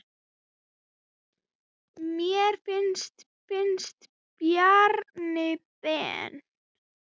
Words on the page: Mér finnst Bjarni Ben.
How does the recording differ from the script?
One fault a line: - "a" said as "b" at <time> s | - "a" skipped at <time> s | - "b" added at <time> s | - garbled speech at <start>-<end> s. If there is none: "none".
- "finnst" added at 3.5 s